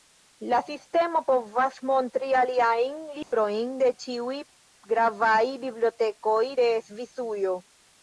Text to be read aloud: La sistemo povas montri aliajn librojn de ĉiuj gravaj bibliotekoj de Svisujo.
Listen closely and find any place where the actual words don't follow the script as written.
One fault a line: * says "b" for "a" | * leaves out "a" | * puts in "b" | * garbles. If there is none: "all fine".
all fine